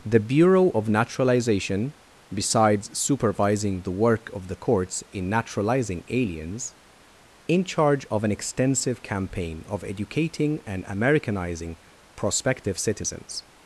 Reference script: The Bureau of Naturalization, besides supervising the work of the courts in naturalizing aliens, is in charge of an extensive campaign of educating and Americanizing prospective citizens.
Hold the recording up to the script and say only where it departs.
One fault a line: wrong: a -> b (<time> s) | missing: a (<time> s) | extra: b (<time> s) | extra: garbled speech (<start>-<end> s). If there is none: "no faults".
missing: is (6.7 s)